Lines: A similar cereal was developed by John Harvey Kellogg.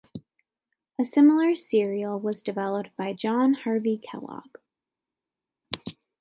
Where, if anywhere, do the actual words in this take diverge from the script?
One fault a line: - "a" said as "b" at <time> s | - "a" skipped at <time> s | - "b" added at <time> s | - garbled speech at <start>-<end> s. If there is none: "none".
none